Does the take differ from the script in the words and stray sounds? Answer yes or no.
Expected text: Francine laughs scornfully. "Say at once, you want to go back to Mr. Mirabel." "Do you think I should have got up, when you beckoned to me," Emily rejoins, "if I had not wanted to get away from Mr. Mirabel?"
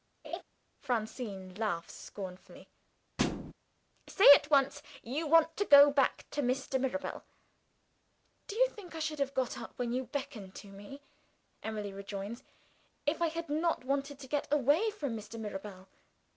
yes